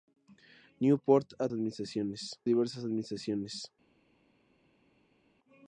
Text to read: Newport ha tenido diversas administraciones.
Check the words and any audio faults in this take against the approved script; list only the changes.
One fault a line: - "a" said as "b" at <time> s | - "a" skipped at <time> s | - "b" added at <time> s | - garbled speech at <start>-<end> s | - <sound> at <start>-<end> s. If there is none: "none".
- "tenido" said as "administraciones" at 1.5 s